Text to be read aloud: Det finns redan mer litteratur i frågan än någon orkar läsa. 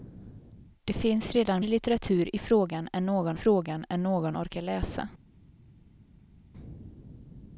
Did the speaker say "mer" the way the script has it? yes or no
no